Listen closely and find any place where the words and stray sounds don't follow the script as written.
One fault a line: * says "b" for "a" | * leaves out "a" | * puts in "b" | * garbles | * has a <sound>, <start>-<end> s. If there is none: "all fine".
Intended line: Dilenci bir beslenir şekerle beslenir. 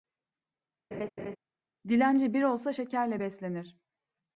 * has a laugh, 0.9-1.4 s
* says "olsa" for "beslenir"